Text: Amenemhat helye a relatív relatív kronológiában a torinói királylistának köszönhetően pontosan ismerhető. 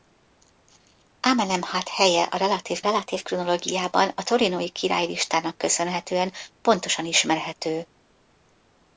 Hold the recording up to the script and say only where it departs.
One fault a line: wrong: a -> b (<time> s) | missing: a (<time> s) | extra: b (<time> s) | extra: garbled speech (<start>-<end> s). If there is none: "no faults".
no faults